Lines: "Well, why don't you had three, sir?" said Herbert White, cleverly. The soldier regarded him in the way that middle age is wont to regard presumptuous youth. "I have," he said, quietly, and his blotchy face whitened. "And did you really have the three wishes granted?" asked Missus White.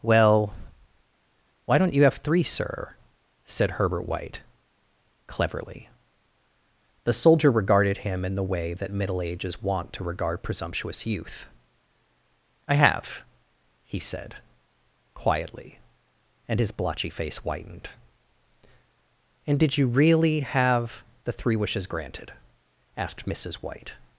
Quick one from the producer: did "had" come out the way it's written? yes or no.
no